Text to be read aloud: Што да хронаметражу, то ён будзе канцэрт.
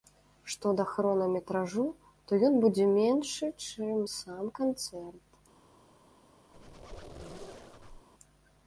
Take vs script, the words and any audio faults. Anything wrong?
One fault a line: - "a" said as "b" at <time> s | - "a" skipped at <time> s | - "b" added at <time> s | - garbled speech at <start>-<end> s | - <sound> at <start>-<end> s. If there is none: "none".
- "меншы чым сам" added at 2.9 s
- squeak at 6.5-8.1 s